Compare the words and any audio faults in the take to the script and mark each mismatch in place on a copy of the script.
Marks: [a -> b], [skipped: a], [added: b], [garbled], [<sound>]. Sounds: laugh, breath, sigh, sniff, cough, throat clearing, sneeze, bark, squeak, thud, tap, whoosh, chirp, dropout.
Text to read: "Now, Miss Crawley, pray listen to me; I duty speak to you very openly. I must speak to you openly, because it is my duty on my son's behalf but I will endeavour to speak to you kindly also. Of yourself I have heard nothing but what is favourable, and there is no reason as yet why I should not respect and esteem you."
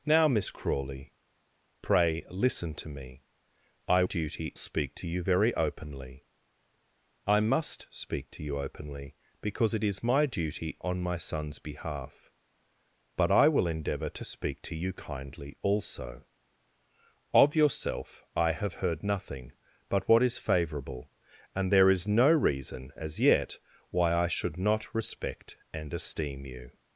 "Now, Miss Crawley, pray listen to me; I duty speak to you very openly. I must speak to you openly, because it is my duty on my son's behalf but I will endeavour to speak to you kindly also. Of yourself I have heard nothing but what is favourable, and there is no reason as yet why I should not respect and esteem you."